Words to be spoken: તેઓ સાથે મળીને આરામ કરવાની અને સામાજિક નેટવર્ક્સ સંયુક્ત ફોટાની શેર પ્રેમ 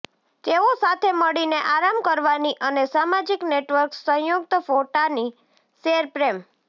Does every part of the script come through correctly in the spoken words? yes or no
yes